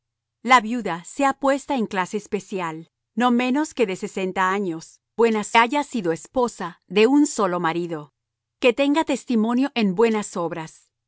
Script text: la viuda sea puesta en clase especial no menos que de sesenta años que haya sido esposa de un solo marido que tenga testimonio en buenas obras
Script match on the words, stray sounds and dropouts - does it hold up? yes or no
no